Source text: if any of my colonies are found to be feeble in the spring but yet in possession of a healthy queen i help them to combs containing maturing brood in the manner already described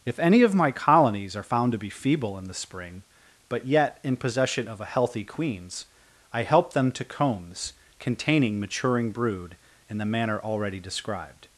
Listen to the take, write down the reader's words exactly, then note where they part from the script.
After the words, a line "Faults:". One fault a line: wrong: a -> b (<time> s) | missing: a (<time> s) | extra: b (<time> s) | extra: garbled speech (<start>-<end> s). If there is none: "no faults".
if any of my colonies are found to be feeble in the spring but yet in possession of a healthy queens i help them to combs containing maturing brood in the manner already described
Faults:
wrong: queen -> queens (5.2 s)